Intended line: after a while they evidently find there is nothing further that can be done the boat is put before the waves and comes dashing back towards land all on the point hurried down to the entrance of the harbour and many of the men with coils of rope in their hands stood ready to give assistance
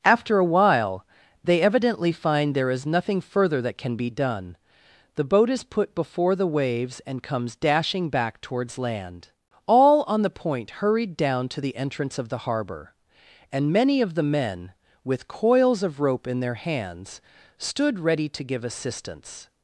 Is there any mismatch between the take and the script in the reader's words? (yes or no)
no